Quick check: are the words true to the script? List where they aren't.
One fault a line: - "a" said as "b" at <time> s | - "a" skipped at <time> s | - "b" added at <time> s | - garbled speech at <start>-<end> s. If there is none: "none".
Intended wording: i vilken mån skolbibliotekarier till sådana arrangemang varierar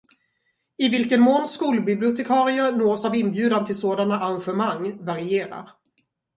- "nås av inbjudan" added at 2.7 s